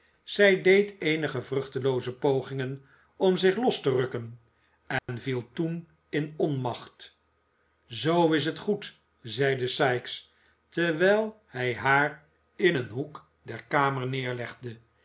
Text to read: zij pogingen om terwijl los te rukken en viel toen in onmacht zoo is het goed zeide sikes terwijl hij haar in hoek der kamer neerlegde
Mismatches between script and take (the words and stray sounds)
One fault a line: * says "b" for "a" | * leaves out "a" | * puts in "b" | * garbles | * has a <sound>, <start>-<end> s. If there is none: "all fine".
* puts in "deed eenige vruchtelooze"
* says "zich" for "terwijl"
* has a dropout, 5.0-5.1 s
* puts in "een"